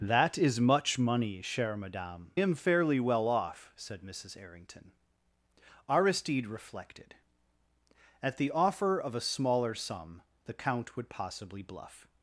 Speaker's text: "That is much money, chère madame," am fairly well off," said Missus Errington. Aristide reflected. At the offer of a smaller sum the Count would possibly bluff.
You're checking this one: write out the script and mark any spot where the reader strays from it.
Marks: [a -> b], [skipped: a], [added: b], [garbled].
"That is much money, chère madame," am fairly well off," said Missus Errington. Aristide reflected. At the offer of a smaller sum the Count would possibly bluff.